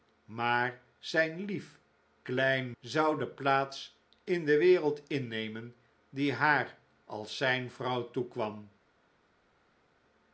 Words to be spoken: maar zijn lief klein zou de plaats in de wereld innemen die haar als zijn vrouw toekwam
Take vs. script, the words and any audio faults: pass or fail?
pass